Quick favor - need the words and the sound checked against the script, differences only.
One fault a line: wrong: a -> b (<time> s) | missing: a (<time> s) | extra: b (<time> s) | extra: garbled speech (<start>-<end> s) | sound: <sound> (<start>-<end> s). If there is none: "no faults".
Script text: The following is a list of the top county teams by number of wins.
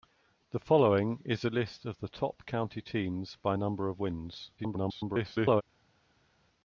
extra: garbled speech (4.6-5.6 s)